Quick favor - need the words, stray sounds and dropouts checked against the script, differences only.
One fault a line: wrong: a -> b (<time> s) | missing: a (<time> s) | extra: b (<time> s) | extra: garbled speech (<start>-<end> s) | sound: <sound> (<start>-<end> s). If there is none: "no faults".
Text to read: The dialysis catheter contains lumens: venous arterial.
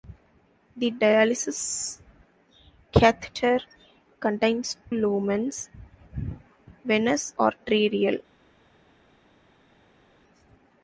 no faults